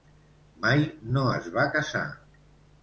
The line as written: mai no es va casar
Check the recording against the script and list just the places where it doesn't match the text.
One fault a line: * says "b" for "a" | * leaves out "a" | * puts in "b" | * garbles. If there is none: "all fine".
all fine